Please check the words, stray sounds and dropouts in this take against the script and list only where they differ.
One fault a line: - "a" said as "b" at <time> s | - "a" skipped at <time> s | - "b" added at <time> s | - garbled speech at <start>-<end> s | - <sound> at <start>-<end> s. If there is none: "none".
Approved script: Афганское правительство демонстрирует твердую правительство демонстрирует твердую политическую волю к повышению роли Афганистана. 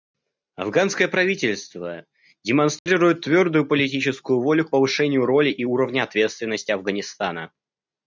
- dropout at 2.8-2.9 s
- "правительство демонстрирует твердую" skipped at 3.7 s
- "и уровня ответственности" added at 5.5 s